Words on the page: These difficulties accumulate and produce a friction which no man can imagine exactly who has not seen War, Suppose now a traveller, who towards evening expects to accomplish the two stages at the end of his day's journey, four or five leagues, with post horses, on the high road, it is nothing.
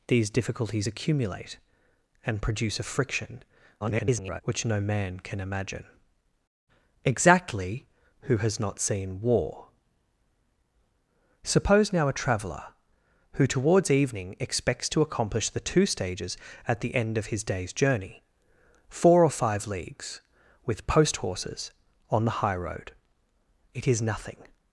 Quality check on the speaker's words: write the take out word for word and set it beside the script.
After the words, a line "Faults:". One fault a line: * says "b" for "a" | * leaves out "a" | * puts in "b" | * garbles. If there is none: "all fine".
These difficulties accumulate and produce a friction [garbled] which no man can imagine exactly who has not seen War, Suppose now a traveller, who towards evening expects to accomplish the two stages at the end of his day's journey, four or five leagues, with post horses, on the high road, it is nothing.
Faults:
* garbles